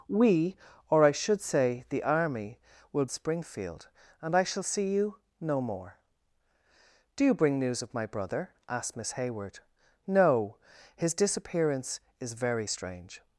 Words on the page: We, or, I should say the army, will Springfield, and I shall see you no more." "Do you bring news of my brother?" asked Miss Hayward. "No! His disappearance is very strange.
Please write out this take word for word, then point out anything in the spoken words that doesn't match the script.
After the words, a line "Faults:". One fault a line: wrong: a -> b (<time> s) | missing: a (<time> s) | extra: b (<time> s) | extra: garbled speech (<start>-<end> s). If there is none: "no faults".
We, or, I should say the army, will Springfield, and I shall see you no more." "Do you bring news of my brother?" asked Miss Hayward. "No! His disappearance is very strange.
Faults:
no faults